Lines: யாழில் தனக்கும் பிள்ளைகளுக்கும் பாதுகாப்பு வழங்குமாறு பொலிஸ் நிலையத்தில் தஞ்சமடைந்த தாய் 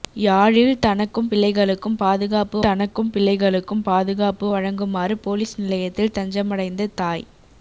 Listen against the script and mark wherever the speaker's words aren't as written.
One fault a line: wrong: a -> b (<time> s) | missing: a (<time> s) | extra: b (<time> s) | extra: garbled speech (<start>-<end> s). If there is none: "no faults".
extra: தனக்கும் பிள்ளைகளுக்கும் பாதுகாப்பு (2.6 s)